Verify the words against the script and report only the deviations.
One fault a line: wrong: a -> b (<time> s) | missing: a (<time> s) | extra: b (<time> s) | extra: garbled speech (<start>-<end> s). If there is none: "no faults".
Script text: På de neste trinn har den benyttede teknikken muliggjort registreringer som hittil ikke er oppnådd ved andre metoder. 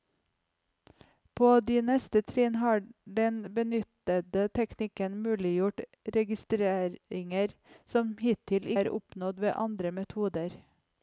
missing: ikke (8.7 s)